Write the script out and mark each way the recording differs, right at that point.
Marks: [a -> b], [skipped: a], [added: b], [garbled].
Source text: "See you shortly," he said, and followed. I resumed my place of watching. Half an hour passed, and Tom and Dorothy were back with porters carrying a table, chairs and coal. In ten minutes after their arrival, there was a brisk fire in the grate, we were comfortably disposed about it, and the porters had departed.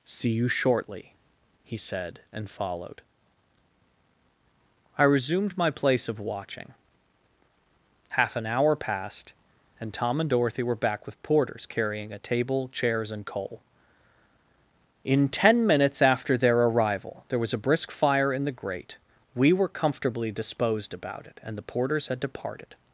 "See you shortly," he said, and followed. I resumed my place of watching. Half an hour passed, and Tom and Dorothy were back with porters carrying a table, chairs and coal. In ten minutes after their arrival, there was a brisk fire in the grate, we were comfortably disposed about it, and the porters had departed.